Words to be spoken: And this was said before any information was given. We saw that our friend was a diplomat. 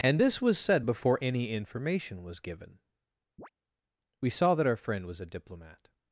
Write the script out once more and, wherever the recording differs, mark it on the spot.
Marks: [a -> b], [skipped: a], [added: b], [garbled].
And this was said before any information was given. We saw that our friend was a diplomat.